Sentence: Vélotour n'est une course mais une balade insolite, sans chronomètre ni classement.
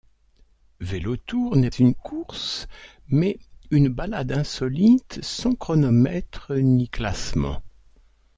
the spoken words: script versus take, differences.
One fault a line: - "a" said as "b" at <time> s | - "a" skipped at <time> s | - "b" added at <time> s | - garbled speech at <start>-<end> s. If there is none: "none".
none